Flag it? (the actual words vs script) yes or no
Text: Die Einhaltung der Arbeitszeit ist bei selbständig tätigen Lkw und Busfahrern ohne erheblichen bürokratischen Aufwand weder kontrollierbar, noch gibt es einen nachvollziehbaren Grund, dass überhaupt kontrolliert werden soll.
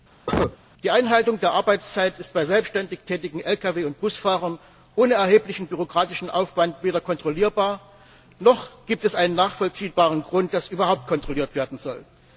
no